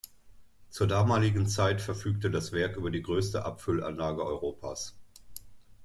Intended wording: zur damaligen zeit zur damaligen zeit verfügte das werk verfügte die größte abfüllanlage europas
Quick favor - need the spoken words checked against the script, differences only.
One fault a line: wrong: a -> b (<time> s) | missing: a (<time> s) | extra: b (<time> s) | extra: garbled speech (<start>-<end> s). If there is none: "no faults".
missing: zur damaligen zeit (1.8 s)
wrong: verfügte -> über (2.8 s)